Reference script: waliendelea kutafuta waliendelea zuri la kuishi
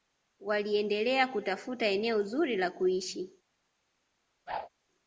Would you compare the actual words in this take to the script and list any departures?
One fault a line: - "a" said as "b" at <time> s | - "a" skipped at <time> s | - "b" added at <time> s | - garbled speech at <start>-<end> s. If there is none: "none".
- "waliendelea" said as "eneo" at 1.9 s